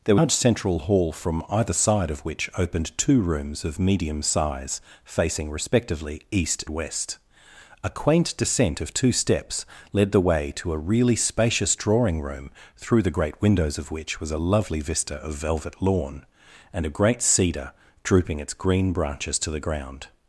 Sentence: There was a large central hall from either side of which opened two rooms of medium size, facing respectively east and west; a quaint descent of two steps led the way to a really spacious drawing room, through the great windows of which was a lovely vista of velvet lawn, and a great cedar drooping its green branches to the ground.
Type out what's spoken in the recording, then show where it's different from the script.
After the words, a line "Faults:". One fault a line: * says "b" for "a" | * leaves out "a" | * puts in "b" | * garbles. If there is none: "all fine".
There large central hall from either side of which opened two rooms of medium size, facing respectively east west; a quaint descent of two steps led the way to a really spacious drawing room, through the great windows of which was a lovely vista of velvet lawn, and a great cedar drooping its green branches to the ground.
Faults:
* leaves out "was a"
* leaves out "and"